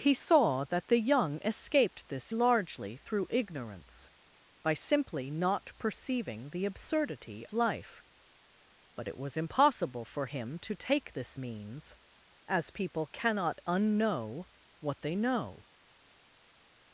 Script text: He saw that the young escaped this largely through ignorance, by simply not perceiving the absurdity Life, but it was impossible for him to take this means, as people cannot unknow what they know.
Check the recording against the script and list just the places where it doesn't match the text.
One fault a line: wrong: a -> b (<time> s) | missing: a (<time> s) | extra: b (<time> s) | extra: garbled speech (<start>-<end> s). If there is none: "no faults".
no faults